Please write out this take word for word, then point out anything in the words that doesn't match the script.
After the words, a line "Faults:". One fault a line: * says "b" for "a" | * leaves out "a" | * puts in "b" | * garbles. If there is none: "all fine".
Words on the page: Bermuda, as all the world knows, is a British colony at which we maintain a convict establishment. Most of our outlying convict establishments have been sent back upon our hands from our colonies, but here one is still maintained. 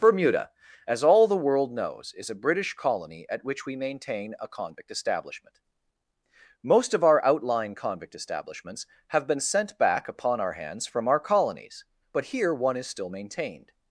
Bermuda, as all the world knows, is a British colony at which we maintain a convict establishment. Most of our outlying convict establishments have been sent back upon our hands from our colonies, but here one is still maintained.
Faults:
all fine